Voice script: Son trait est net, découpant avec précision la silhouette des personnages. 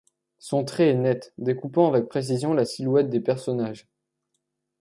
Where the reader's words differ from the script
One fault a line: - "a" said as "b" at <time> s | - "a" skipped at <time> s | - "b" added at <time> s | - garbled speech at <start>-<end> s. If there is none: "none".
none